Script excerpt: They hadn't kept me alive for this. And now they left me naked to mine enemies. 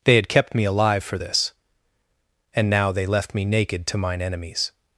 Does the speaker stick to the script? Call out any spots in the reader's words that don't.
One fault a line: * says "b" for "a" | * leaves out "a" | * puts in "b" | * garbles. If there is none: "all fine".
* says "had" for "hadn't"